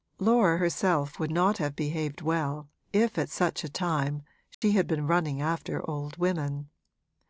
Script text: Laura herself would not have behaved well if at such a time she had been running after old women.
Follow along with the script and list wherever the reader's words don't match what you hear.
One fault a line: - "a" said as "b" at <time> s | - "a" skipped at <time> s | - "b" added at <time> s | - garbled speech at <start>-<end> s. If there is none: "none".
none